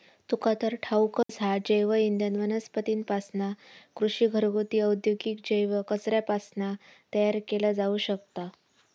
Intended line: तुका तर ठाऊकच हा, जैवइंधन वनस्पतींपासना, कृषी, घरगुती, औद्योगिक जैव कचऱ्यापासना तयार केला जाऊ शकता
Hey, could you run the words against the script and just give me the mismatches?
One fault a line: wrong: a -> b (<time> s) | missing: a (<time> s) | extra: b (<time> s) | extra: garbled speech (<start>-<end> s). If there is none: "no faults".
no faults